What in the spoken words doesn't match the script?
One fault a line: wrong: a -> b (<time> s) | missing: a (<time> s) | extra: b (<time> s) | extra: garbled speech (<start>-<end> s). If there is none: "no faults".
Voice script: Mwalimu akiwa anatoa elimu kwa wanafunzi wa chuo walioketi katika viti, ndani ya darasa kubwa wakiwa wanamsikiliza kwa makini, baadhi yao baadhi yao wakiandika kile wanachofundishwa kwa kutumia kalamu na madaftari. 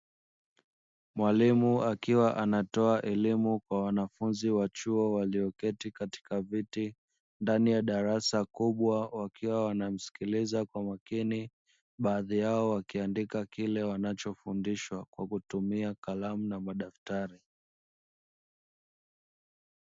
missing: baadhi yao (12.7 s)